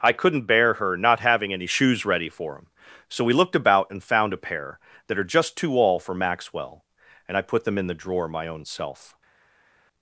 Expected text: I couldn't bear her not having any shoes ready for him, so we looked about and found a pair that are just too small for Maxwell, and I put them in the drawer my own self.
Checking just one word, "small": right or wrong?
wrong